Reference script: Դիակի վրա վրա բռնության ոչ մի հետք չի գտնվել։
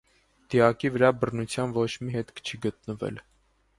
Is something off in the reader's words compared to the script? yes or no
yes